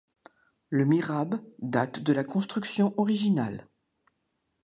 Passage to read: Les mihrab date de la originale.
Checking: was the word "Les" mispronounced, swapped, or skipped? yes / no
yes